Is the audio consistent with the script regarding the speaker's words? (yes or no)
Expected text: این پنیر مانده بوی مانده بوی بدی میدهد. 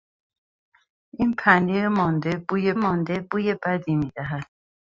yes